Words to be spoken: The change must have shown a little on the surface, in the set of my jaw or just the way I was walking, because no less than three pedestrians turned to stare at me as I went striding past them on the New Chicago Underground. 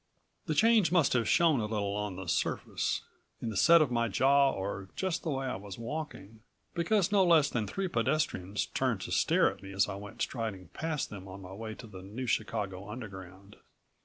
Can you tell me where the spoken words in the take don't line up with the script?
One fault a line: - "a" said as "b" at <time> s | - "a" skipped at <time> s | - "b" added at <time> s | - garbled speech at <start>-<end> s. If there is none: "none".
- "my way to" added at 11.4 s